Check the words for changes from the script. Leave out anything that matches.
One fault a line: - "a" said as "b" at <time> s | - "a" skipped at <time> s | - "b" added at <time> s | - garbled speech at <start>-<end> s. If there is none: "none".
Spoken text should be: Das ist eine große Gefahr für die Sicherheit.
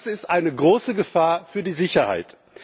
none